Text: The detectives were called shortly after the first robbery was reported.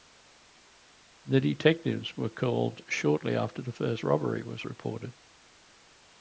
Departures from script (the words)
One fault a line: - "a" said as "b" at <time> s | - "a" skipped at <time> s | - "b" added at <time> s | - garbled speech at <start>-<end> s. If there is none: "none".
none